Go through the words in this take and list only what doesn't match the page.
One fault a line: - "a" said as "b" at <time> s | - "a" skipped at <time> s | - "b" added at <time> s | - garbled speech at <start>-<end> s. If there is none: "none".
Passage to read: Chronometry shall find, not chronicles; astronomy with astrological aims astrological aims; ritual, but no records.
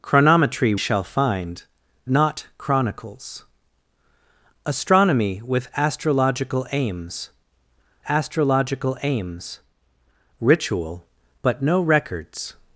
none